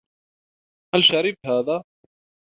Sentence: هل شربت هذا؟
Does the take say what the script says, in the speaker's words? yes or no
yes